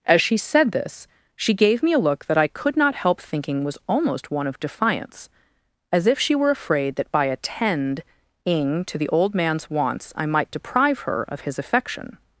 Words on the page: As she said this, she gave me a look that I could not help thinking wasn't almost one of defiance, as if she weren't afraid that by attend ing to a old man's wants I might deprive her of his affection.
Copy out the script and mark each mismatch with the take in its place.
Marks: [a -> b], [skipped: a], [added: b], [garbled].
As she said this, she gave me a look that I could not help thinking [wasn't -> was] almost one of defiance, as if she [weren't -> were] afraid that by attend ing to [a -> the] old man's wants I might deprive her of his affection.